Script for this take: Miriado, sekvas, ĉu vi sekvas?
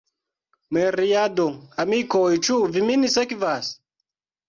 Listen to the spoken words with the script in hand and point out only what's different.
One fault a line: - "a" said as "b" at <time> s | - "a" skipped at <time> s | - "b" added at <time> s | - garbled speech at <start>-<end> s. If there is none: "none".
- "sekvas" said as "amikoj" at 1.9 s
- "min" added at 2.9 s